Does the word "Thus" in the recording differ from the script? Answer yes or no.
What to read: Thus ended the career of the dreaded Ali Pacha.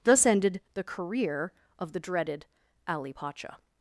no